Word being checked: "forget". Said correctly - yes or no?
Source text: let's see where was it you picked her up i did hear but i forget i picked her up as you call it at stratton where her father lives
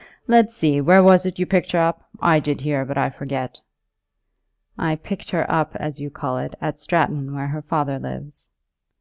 yes